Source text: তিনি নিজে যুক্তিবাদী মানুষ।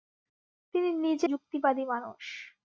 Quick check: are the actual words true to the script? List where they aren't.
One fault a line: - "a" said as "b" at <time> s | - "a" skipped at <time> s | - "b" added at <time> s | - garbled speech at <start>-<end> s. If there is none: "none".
none